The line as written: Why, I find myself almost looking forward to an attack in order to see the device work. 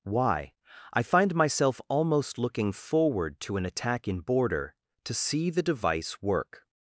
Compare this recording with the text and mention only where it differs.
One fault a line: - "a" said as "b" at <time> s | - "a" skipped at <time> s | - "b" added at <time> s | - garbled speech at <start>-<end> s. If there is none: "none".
- "order" said as "border" at 4.2 s